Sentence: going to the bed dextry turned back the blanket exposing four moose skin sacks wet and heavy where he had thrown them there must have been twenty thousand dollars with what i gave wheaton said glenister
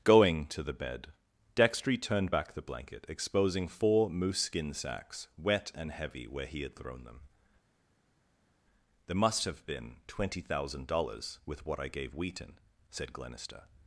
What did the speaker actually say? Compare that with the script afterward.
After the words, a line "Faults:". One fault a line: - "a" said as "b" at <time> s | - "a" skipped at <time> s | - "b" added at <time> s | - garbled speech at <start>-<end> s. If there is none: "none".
going to the bed dextry turned back the blanket exposing four moose skin sacks wet and heavy where he had thrown them there must have been twenty thousand dollars with what i gave wheaton said glenister
Faults:
none